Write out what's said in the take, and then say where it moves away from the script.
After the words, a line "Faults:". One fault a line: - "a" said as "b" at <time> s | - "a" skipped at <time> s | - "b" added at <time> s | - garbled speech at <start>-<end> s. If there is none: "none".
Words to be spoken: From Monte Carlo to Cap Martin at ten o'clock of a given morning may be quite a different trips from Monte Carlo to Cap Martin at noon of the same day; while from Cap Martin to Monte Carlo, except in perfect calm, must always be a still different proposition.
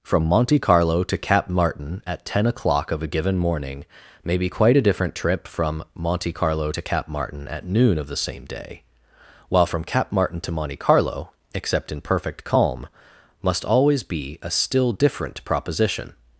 From Monte Carlo to Cap Martin at ten o'clock of a given morning may be quite a different trip from Monte Carlo to Cap Martin at noon of the same day; while from Cap Martin to Monte Carlo, except in perfect calm, must always be a still different proposition.
Faults:
- "trips" said as "trip" at 5.1 s